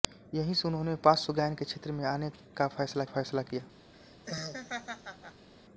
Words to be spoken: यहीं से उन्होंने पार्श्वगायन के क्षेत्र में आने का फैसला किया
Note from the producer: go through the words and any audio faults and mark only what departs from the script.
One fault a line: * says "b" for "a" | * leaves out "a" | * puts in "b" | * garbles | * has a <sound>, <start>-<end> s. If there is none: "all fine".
* puts in "फैसला"
* has a laugh, 3.9-5.5 s